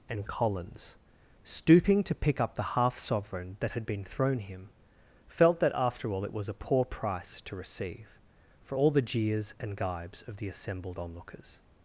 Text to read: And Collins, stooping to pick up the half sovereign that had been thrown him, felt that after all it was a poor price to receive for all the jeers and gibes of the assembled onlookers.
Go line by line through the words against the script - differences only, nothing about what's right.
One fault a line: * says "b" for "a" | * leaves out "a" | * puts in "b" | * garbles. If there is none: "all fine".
all fine